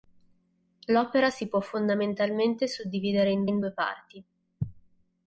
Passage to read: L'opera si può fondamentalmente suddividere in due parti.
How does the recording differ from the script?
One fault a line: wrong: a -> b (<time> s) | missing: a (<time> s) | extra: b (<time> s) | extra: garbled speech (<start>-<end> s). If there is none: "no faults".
extra: in (3.4 s)